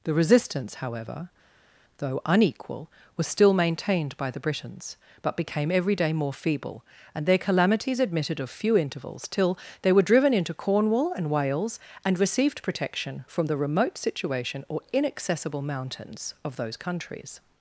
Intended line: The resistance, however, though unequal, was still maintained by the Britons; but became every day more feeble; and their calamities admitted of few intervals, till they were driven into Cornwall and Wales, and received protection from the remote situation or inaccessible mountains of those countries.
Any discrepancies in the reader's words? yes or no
no